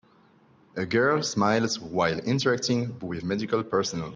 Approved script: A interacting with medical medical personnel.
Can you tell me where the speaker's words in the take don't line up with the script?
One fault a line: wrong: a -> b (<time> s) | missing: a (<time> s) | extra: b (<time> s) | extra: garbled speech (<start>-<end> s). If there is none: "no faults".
extra: girl smiles while (0.8 s)
missing: medical (3.6 s)